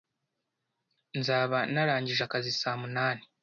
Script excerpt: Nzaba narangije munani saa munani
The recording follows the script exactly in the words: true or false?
false